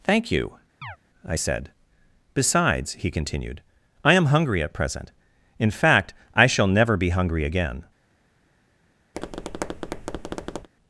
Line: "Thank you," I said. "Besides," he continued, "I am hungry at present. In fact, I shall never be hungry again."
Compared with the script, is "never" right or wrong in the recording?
right